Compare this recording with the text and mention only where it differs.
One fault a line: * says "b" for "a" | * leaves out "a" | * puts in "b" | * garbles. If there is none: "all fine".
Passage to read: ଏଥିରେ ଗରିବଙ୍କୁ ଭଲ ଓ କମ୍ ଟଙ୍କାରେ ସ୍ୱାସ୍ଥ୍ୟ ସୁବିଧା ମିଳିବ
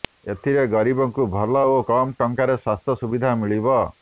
all fine